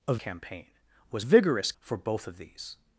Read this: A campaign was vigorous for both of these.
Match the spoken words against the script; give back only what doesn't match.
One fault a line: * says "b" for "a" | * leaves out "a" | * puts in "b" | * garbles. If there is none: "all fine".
all fine